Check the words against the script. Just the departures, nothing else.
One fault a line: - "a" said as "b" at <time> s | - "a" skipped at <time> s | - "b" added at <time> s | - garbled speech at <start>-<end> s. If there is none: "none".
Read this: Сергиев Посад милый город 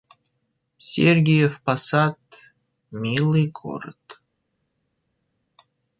none